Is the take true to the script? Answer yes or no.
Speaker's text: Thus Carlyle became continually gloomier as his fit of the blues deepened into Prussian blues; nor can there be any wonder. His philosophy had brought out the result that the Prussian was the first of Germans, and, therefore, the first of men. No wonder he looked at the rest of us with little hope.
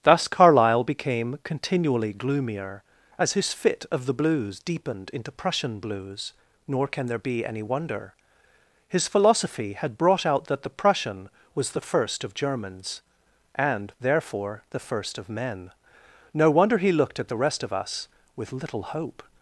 no